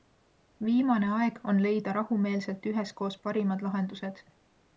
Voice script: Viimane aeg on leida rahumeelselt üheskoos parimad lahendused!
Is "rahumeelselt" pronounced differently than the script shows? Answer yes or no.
no